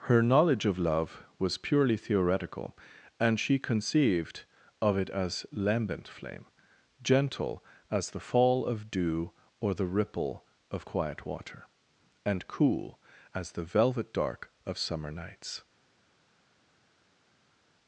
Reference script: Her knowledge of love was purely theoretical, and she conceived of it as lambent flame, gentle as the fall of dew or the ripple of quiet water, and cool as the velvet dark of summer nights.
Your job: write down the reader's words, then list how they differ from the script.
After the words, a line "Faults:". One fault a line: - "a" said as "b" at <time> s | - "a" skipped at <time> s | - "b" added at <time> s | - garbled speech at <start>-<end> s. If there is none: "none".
Her knowledge of love was purely theoretical, and she conceived of it as lambent flame, gentle as the fall of dew or the ripple of quiet water, and cool as the velvet dark of summer nights.
Faults:
none